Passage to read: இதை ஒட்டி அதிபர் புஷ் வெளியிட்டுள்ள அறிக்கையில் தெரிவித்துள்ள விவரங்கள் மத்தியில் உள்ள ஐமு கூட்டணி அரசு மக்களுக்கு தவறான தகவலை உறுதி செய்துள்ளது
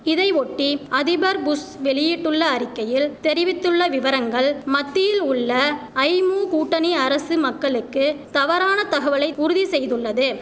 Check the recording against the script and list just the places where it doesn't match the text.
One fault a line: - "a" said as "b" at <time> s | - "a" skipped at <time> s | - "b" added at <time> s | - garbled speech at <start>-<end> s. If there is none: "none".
none